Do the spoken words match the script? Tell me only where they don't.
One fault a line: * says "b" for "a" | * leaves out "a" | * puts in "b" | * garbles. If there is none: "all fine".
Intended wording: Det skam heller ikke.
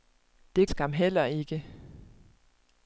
all fine